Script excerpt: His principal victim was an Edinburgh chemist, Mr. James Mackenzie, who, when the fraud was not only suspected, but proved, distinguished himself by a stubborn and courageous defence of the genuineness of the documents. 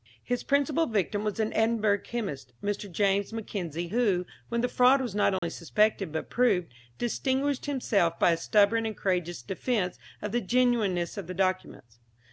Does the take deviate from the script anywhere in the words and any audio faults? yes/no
yes